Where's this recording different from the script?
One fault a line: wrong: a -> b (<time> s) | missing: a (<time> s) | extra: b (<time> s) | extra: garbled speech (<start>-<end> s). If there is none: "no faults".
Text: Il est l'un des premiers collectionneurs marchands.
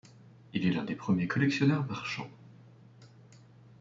no faults